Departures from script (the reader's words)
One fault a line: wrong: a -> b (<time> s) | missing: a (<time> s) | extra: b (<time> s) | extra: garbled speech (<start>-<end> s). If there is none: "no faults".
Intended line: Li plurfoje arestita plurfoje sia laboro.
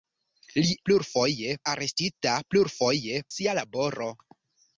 no faults